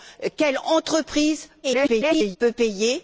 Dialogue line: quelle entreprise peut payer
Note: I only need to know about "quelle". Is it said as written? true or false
true